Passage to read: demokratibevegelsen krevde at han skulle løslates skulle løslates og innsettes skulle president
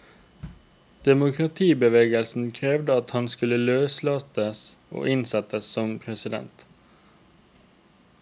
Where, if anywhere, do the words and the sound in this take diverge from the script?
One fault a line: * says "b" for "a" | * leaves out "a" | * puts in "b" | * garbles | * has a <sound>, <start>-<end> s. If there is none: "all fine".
* leaves out "skulle løslates"
* says "som" for "skulle"